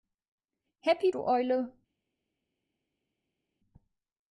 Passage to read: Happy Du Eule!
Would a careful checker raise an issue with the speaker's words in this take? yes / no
no